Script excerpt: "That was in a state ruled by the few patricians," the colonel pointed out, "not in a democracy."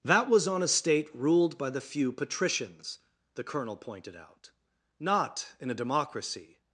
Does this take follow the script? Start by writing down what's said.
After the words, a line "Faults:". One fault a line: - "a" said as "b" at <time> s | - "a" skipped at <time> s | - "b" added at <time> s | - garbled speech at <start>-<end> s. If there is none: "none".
"That was on a state ruled by the few patricians," the colonel pointed out, "not in a democracy."
Faults:
- "in" said as "on" at 0.5 s